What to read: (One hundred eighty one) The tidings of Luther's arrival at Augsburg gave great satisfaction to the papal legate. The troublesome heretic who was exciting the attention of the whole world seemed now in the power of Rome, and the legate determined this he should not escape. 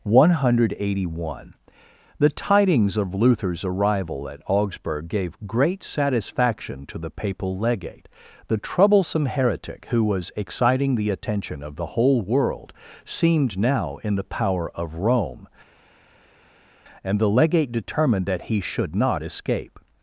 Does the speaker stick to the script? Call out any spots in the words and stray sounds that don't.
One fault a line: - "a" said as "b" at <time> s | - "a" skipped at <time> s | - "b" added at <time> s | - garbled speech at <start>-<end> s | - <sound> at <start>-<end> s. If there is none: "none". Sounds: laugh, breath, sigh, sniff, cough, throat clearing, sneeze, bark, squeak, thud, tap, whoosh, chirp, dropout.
- "this" said as "that" at 18.3 s